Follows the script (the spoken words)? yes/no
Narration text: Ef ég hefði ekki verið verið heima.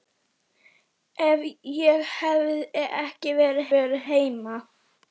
yes